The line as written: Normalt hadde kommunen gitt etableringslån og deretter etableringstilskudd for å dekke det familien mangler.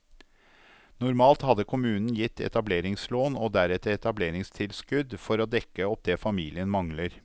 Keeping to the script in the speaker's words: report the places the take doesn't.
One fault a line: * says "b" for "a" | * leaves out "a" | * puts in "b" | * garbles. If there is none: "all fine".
* puts in "opp"